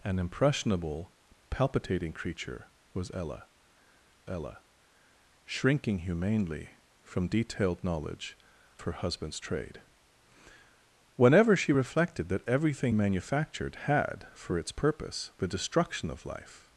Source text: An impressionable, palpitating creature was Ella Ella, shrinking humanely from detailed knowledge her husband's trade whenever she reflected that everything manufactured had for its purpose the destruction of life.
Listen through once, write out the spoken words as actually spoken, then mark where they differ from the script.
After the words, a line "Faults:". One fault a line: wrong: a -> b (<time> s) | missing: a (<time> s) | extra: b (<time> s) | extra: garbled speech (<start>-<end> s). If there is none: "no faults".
An impressionable, palpitating creature was Ella Ella, shrinking humanely from detailed knowledge her husband's trade whenever she reflected that everything manufactured had for its purpose the destruction of life.
Faults:
no faults